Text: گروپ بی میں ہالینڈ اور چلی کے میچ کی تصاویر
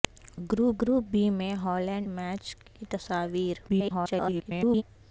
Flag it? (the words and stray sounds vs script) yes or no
yes